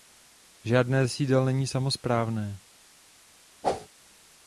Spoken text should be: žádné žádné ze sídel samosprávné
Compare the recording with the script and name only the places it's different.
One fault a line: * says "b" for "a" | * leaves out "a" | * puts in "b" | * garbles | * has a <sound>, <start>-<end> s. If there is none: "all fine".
* leaves out "žádné"
* puts in "není"
* has a whoosh, 3.6-3.9 s